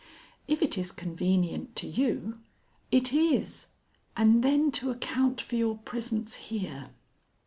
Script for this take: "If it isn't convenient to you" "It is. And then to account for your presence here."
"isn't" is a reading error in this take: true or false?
true